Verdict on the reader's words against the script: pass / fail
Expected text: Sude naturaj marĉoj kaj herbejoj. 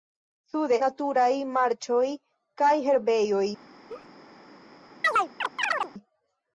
pass